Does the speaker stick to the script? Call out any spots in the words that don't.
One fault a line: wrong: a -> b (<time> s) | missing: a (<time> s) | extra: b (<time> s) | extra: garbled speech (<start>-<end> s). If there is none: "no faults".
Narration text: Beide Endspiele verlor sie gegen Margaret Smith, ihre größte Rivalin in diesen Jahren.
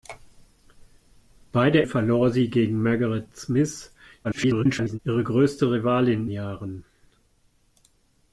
missing: Endspiele (1.8 s)
extra: garbled speech (4.2-5.0 s)
missing: in diesen (6.3 s)